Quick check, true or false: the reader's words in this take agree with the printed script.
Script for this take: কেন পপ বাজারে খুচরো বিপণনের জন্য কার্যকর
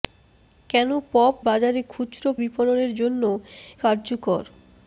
true